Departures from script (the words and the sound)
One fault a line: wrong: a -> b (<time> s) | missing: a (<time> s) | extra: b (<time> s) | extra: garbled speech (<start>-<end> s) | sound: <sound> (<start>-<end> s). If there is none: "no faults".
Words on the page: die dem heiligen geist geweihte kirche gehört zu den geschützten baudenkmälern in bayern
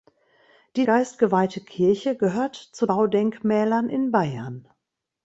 missing: dem heiligen (0.8 s)
missing: den geschützten (2.9 s)